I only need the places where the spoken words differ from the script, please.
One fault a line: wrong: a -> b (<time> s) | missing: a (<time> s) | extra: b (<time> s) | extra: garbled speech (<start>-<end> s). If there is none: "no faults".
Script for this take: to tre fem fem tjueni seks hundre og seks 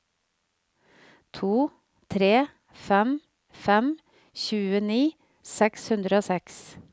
no faults